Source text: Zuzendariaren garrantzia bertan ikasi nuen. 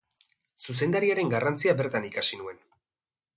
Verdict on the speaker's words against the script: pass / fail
pass